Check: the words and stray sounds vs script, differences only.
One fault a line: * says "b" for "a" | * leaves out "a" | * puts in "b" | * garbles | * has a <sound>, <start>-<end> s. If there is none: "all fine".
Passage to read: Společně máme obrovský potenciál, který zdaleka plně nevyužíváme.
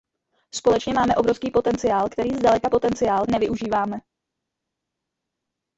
* says "potenciál" for "plně"